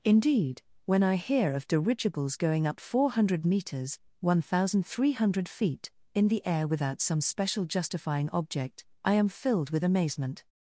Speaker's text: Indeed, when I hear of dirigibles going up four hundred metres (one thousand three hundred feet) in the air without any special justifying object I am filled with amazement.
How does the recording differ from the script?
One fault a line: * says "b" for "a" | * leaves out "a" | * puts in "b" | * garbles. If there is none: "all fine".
* says "some" for "any"